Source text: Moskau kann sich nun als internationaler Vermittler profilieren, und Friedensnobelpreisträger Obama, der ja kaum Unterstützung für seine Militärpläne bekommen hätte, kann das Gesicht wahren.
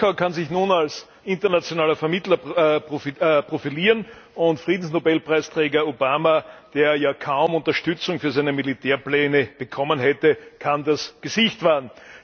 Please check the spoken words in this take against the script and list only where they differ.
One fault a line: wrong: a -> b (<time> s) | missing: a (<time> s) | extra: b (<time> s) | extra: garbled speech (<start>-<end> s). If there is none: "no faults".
no faults